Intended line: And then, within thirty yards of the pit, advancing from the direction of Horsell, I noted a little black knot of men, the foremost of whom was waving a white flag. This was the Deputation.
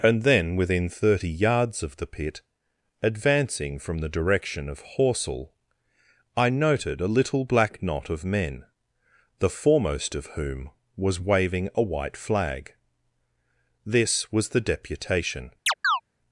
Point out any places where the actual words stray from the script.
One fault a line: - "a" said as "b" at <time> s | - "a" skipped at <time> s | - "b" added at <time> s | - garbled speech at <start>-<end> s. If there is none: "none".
none